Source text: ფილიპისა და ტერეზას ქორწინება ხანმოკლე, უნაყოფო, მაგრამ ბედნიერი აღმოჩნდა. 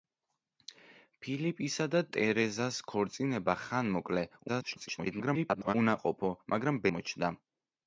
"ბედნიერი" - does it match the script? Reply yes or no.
no